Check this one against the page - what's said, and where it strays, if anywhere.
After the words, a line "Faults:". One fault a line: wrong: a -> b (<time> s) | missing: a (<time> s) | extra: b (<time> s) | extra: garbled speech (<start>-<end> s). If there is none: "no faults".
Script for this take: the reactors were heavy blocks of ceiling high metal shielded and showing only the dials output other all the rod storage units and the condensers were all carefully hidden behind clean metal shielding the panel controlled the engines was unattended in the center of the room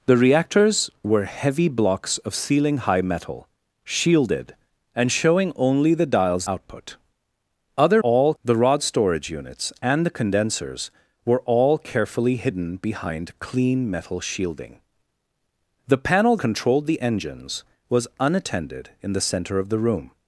the reactors were heavy blocks of ceiling high metal shielded and showing only the dials output other all the rod storage units and the condensers were all carefully hidden behind clean metal shielding the panel controlled the engines was unattended in the center of the room
Faults:
no faults